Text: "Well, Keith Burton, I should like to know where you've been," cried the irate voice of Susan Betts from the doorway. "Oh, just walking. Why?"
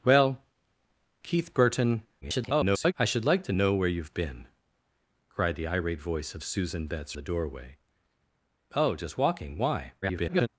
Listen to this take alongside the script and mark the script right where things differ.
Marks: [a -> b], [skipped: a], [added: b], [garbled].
"Well, Keith Burton, [garbled] I should like to know where you've been," cried the irate voice of Susan Betts [skipped: from] the doorway. "Oh, just walking. Why?" [garbled]